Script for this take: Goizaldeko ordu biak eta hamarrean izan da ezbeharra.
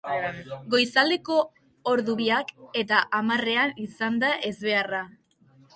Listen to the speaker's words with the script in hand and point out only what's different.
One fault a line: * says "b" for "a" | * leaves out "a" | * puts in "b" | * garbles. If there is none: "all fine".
all fine